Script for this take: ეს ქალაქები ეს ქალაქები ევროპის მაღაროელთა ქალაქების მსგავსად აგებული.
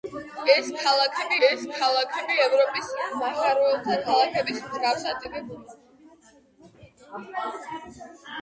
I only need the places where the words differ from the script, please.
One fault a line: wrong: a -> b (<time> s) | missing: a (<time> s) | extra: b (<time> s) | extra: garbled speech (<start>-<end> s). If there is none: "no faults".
no faults